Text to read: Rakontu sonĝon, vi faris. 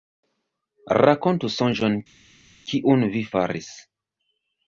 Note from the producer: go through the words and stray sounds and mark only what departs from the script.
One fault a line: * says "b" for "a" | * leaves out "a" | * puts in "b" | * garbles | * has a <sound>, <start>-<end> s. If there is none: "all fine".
* puts in "kiun"